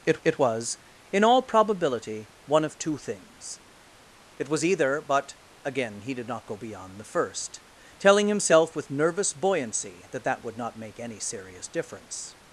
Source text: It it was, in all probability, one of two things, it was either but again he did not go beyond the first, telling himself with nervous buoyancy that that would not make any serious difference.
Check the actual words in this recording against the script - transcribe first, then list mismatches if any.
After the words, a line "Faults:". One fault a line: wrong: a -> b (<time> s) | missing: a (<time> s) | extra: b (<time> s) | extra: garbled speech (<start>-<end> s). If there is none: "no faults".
It it was, in all probability, one of two things, it was either but again he did not go beyond the first, telling himself with nervous buoyancy that that would not make any serious difference.
Faults:
no faults